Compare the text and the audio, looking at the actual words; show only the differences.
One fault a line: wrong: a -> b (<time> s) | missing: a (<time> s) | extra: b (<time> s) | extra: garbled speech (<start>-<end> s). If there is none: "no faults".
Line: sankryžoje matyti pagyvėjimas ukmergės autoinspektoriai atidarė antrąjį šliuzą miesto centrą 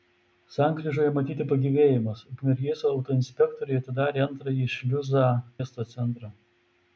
no faults